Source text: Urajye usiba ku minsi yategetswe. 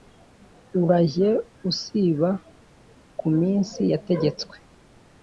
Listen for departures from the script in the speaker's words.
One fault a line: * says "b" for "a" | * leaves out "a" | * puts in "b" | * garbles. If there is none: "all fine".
all fine